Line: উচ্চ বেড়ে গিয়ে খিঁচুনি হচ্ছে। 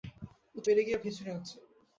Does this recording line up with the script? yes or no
yes